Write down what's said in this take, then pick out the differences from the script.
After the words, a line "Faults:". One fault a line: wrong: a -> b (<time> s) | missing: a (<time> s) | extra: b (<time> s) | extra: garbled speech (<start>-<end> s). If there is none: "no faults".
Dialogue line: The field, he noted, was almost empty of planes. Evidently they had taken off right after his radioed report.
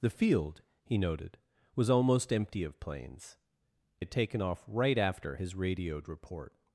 The field, he noted, was almost empty of planes. Had taken off right after his radioed report.
Faults:
missing: Evidently they (3.4 s)